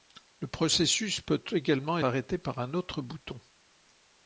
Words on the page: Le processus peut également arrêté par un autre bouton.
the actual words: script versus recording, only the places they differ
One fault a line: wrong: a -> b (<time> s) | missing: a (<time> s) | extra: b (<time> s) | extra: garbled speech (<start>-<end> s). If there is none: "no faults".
no faults